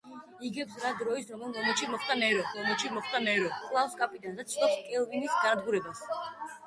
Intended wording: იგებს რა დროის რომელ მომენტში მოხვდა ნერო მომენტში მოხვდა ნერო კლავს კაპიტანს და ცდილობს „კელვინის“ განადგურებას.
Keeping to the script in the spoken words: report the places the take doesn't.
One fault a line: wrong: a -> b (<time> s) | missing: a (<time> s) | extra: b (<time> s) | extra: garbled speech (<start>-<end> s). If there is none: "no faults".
no faults